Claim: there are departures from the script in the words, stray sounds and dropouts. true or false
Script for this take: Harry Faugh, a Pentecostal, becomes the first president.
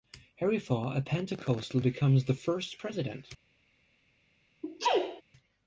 true